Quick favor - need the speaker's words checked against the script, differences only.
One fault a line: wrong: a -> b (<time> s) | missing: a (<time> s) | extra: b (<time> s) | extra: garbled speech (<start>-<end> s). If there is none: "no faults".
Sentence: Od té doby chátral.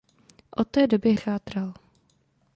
no faults